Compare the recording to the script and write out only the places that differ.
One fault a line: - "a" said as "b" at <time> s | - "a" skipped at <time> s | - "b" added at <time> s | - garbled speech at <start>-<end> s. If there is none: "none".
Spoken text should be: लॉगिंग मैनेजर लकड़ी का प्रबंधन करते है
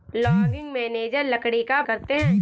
- "प्रबंधन" skipped at 1.8 s